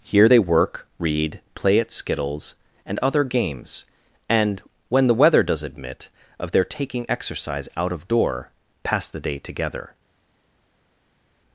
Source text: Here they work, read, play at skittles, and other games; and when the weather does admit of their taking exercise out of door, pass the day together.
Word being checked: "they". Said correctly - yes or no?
yes